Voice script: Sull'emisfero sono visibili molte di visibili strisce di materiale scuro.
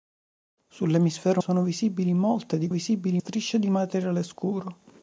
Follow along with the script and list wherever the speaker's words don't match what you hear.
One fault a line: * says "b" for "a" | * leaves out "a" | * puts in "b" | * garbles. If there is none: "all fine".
all fine